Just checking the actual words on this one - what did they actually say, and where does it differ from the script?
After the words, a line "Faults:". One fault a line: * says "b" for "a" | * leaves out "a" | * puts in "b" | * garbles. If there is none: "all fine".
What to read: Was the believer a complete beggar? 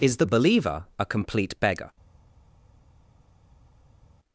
Is the believer a complete beggar?
Faults:
* says "Is" for "Was"